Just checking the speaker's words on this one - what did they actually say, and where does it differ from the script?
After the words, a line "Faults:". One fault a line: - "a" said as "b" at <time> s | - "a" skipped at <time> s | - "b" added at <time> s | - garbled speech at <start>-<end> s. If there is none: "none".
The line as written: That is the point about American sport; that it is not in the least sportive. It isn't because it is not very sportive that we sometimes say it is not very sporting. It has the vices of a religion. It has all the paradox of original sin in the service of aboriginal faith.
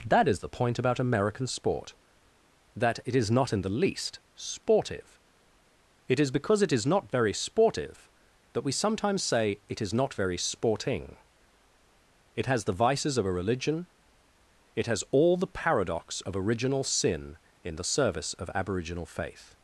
That is the point about American sport; that it is not in the least sportive. It is because it is not very sportive that we sometimes say it is not very sporting. It has the vices of a religion. It has all the paradox of original sin in the service of aboriginal faith.
Faults:
- "isn't" said as "is" at 6.2 s